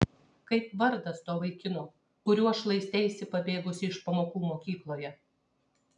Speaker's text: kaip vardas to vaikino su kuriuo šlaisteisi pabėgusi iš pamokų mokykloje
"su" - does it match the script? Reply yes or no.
no